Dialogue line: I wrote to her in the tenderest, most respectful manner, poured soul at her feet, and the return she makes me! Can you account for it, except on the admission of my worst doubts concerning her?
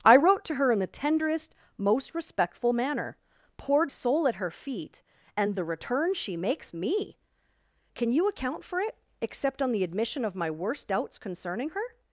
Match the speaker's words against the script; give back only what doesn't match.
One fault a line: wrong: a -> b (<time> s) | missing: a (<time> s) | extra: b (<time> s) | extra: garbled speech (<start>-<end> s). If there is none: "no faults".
no faults